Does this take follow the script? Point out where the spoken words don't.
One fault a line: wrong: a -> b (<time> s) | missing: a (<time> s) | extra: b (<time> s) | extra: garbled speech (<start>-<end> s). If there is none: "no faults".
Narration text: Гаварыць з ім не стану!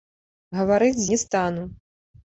missing: ім (1.1 s)